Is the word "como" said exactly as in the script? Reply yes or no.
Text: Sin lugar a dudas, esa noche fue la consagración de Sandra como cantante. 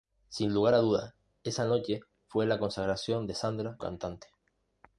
no